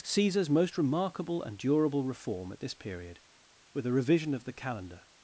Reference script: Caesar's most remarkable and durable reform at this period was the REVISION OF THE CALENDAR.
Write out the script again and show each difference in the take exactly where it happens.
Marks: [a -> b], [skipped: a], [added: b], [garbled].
Caesar's most remarkable and durable reform at this period [was -> were] the REVISION OF THE CALENDAR.